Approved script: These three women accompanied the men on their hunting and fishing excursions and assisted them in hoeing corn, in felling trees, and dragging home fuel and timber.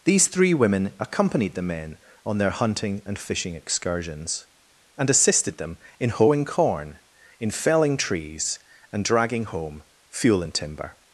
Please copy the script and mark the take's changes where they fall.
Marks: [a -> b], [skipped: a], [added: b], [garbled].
These three women accompanied the men on their hunting and fishing excursions and assisted them in hoeing corn, in felling trees, and dragging home fuel and timber.